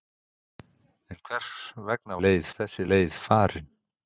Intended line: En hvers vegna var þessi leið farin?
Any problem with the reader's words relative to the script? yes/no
yes